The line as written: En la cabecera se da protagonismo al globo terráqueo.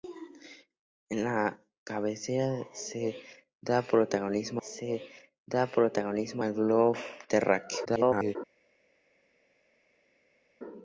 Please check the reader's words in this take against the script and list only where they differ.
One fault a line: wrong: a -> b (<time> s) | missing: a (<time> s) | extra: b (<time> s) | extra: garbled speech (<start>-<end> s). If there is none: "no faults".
extra: se da protagonismo (4.6 s)
extra: garbled speech (7.8-8.4 s)